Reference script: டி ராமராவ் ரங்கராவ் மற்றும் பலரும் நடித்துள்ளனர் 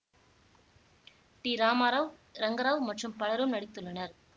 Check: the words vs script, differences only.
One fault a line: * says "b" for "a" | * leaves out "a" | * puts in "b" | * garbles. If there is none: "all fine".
all fine